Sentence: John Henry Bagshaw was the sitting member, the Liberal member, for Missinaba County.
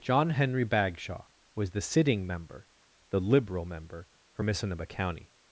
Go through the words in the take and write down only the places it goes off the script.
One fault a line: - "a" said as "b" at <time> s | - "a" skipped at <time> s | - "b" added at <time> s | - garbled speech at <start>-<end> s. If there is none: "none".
none